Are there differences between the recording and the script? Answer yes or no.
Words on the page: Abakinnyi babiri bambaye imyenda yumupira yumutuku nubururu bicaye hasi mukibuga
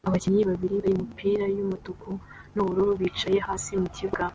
yes